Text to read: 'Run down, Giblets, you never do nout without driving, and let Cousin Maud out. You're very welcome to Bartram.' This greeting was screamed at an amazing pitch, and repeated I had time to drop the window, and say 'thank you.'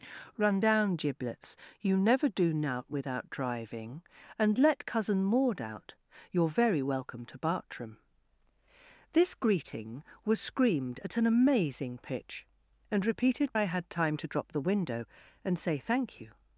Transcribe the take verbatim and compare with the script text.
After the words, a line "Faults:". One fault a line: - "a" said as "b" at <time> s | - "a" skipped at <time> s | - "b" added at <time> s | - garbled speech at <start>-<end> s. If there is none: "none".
'Run down, Giblets, you never do nout without driving, and let Cousin Maud out. You're very welcome to Bartram.' This greeting was screamed at an amazing pitch, and repeated I had time to drop the window, and say 'thank you.'
Faults:
none